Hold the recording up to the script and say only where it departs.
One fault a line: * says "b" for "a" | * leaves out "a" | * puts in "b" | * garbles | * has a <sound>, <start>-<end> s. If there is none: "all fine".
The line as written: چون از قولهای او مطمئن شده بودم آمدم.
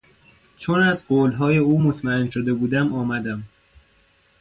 all fine